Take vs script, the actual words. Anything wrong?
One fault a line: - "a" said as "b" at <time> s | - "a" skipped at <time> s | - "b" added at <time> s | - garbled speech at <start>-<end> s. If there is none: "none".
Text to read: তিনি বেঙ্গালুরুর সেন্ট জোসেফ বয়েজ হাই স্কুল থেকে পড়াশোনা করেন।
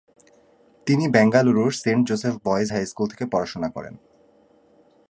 none